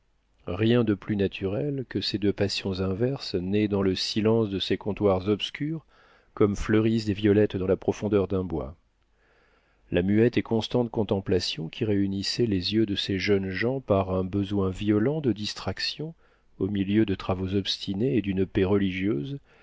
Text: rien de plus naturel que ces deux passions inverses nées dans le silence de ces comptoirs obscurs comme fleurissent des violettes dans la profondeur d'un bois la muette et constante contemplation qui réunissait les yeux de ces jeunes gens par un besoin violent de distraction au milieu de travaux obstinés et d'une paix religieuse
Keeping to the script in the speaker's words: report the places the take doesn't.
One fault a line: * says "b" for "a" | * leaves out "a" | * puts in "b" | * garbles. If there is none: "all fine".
all fine